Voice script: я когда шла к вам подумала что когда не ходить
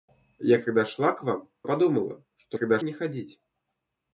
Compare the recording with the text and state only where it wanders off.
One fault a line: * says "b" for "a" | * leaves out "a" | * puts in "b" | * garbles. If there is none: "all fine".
all fine